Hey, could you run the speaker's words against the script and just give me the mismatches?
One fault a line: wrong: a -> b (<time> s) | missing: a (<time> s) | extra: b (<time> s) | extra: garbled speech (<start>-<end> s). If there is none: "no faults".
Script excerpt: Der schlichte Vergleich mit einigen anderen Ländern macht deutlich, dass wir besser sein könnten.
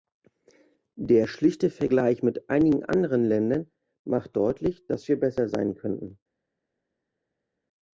no faults